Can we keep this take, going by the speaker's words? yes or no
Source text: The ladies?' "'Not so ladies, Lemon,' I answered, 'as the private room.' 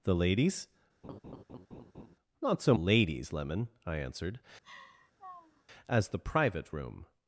yes